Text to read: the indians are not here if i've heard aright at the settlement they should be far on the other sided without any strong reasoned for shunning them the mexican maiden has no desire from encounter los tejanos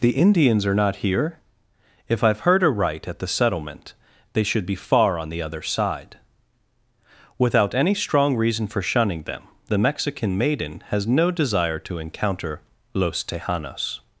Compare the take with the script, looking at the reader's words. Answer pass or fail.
fail